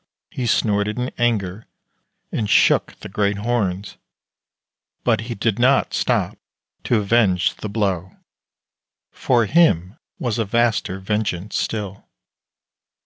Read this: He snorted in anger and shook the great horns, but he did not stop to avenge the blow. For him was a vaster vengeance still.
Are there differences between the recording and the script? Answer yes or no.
no